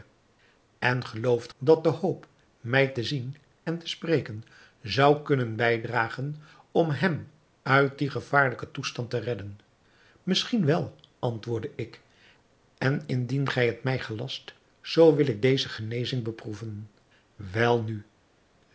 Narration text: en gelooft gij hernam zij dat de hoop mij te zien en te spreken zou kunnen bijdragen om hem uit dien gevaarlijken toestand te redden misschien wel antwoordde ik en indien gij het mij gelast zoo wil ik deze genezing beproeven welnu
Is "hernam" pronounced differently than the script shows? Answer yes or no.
yes